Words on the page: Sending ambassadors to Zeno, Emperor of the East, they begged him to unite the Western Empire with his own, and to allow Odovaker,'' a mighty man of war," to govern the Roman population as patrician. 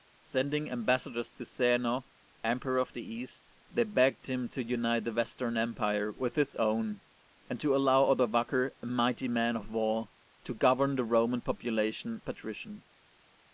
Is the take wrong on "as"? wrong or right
wrong